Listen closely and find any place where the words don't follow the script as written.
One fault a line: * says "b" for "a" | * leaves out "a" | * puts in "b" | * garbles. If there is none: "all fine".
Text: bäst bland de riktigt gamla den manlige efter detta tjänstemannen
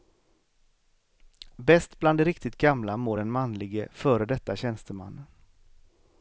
* puts in "mår"
* says "före" for "efter"